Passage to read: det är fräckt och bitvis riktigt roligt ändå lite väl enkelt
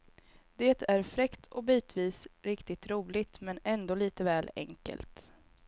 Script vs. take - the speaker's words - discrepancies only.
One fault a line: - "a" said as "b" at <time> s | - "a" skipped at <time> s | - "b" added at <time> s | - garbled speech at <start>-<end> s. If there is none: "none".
- "men" added at 3.4 s